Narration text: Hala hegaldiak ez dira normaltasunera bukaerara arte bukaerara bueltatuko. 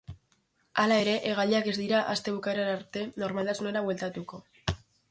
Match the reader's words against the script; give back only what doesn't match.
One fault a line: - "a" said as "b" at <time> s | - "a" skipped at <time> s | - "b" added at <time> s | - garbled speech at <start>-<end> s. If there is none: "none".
- "ere" added at 1.0 s
- "normaltasunera" said as "aste" at 2.1 s
- "bukaerara" said as "normaltasunera" at 3.3 s